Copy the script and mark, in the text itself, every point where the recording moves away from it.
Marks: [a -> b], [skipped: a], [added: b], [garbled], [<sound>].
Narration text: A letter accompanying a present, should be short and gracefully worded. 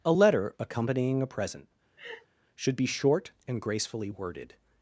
A letter accompanying a present, [laugh] should be short and gracefully worded.